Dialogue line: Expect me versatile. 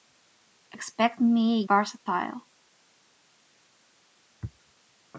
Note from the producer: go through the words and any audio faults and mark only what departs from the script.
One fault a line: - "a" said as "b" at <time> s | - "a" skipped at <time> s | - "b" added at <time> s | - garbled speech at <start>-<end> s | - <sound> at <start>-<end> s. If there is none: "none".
none